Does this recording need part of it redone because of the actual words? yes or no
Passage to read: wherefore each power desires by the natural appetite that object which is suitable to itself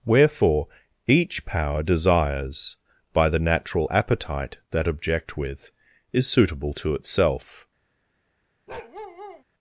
yes